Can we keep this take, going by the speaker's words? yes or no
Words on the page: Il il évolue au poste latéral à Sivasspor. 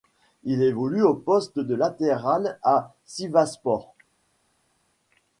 no